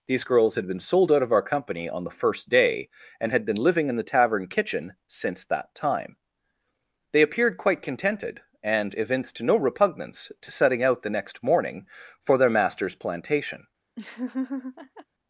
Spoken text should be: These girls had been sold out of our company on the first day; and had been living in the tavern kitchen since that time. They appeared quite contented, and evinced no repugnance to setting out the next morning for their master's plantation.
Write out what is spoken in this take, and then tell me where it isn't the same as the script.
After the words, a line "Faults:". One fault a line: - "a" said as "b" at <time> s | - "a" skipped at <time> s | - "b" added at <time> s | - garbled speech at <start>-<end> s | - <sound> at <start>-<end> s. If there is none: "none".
These girls had been sold out of our company on the first day; and had been living in the tavern kitchen since that time. They appeared quite contented, and evinced no repugnance to setting out the next morning for their master's plantation.
Faults:
- laugh at 14.0-15.1 s